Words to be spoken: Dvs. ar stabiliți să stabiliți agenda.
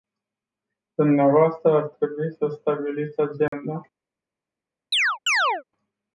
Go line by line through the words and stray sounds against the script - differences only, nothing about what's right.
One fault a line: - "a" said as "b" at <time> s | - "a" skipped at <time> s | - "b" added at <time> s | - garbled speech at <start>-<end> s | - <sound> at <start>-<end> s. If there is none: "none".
- "stabiliți" said as "trebui" at 1.9 s
- dropout at 3.5-3.5 s
- chirp at 4.9-5.6 s